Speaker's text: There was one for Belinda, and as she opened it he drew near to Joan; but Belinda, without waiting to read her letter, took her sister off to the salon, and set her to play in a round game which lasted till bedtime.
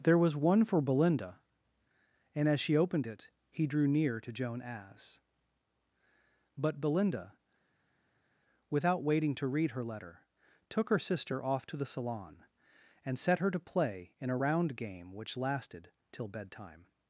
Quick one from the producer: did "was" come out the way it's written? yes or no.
yes